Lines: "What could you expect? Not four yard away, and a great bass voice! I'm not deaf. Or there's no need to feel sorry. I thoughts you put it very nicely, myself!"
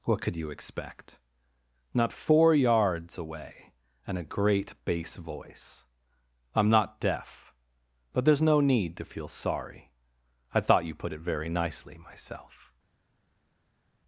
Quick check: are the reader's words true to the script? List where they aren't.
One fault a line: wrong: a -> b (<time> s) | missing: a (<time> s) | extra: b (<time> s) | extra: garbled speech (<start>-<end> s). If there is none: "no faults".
wrong: yard -> yards (2.5 s)
wrong: Or -> But (8.1 s)
wrong: thoughts -> thought (10.6 s)